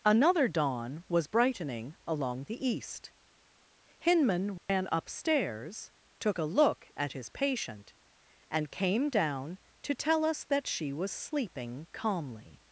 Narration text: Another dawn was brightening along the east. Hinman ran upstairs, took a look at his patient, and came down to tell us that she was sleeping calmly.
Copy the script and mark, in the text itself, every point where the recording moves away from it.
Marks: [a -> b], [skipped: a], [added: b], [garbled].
Another dawn was brightening along the east. Hinman ran upstairs, took a look at his patient, and came down to tell us that she was sleeping calmly.